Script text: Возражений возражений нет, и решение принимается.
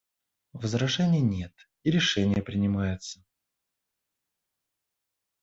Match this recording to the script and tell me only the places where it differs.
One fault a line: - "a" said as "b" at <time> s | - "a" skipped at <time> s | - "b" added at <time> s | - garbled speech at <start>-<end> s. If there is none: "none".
- "возражений" skipped at 1.2 s